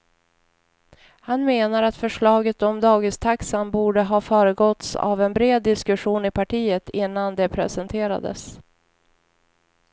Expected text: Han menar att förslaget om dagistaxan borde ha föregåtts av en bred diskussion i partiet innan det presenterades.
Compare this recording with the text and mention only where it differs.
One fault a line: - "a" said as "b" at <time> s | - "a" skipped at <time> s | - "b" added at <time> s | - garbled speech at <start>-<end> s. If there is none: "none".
none